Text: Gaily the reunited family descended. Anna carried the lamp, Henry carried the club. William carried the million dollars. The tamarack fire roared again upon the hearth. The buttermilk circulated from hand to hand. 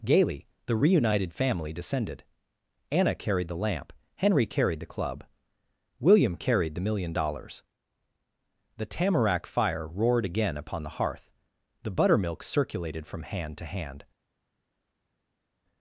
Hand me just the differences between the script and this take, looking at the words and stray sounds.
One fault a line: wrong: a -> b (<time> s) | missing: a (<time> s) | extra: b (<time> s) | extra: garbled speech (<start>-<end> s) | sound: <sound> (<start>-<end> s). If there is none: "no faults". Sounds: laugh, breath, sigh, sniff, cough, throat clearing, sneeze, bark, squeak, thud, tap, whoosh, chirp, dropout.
no faults